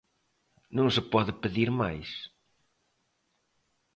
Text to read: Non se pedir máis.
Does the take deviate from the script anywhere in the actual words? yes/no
yes